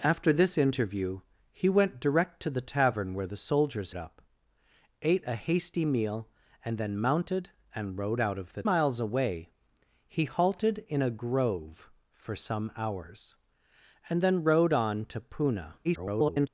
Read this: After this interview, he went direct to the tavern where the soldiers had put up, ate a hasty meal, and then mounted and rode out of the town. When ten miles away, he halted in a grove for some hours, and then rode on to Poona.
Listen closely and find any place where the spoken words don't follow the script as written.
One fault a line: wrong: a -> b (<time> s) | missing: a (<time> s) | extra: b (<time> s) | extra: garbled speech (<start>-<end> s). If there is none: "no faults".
missing: had put (3.9 s)
missing: town When ten (8.6 s)
extra: garbled speech (15.8-16.5 s)